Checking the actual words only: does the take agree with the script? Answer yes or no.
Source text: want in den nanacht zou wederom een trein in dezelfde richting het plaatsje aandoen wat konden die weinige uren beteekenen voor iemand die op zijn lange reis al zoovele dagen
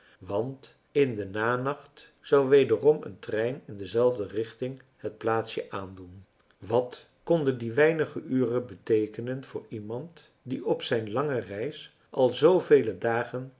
yes